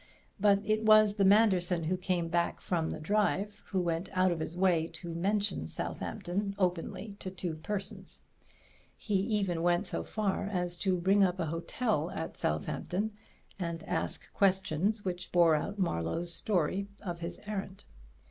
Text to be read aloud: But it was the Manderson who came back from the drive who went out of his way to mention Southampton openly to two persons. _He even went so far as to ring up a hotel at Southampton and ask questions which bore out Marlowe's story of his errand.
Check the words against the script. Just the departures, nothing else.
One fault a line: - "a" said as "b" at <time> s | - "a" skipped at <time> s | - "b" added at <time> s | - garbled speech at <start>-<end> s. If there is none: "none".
none